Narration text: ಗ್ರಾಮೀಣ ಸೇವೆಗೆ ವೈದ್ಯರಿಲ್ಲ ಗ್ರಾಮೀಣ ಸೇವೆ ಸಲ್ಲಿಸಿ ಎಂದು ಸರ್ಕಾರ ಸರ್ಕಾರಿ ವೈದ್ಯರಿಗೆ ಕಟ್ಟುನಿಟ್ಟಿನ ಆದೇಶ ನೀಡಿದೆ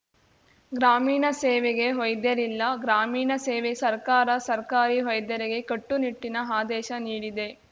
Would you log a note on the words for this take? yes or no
yes